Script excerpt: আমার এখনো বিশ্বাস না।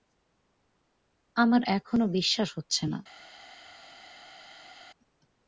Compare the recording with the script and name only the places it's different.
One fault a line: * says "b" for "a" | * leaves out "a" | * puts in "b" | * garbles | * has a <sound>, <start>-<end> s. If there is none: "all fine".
* puts in "হচ্ছে"